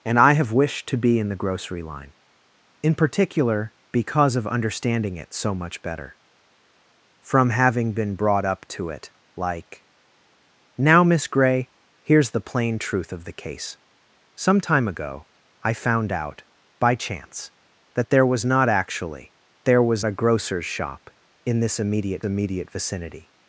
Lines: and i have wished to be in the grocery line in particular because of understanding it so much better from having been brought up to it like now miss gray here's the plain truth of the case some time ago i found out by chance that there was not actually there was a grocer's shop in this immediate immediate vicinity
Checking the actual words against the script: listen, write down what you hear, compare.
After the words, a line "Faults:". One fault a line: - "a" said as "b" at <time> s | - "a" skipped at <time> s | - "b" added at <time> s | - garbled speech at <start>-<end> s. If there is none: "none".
and i have wished to be in the grocery line in particular because of understanding it so much better from having been brought up to it like now miss gray here's the plain truth of the case some time ago i found out by chance that there was not actually there was a grocer's shop in this immediate immediate vicinity
Faults:
none